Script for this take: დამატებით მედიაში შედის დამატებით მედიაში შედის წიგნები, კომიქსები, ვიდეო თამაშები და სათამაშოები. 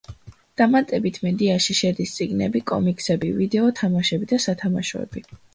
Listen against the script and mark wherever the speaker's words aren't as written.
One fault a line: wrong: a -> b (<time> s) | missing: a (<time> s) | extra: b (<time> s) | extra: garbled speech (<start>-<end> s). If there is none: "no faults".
missing: დამატებით მედიაში შედის (2.1 s)